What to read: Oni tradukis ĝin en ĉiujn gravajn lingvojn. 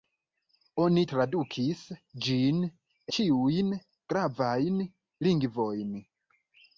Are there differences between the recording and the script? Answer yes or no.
yes